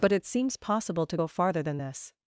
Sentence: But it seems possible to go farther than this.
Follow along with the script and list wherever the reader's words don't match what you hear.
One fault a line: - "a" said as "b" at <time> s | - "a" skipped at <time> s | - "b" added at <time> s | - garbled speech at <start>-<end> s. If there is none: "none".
none